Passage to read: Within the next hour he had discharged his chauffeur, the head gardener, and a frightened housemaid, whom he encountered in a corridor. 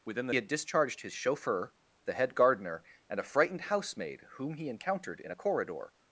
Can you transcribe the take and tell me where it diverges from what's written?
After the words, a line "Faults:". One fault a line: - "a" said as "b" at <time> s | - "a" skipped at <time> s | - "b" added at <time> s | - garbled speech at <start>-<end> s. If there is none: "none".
Within the had discharged his chauffeur, the head gardener, and a frightened housemaid, whom he encountered in a corridor.
Faults:
- "next hour he" skipped at 0.3 s